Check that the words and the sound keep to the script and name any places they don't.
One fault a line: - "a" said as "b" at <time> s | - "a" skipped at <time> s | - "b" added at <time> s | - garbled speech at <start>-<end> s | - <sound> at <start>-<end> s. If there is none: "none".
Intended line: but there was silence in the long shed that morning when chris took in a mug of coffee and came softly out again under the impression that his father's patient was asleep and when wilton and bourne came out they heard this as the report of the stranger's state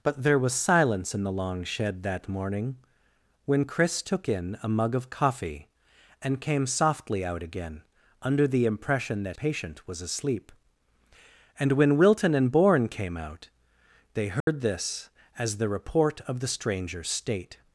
- "his father's" skipped at 9.4 s
- dropout at 14.4-14.5 s